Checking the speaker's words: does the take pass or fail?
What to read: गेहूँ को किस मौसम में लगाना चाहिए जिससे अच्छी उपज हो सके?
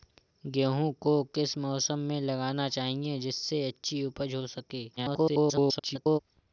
fail